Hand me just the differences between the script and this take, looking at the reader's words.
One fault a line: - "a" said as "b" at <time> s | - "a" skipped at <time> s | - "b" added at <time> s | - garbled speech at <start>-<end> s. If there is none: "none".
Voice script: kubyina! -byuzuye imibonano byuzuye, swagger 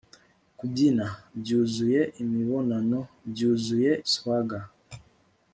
none